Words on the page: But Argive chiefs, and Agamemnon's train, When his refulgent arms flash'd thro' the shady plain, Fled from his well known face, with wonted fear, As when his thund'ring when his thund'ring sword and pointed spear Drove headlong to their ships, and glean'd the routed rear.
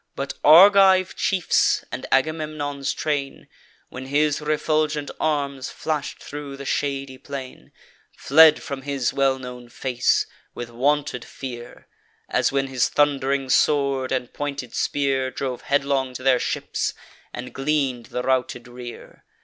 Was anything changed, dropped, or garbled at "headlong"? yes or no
no